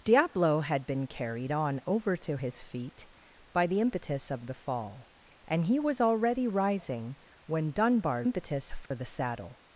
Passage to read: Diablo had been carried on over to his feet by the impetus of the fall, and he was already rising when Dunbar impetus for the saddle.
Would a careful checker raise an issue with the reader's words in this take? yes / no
no